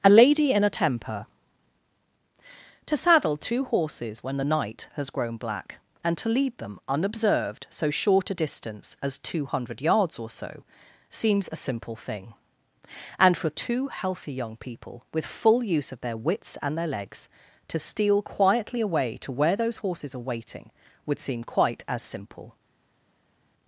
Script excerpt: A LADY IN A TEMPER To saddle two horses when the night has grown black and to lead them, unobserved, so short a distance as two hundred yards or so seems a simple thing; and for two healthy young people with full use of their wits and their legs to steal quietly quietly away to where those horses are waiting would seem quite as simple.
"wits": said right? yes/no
yes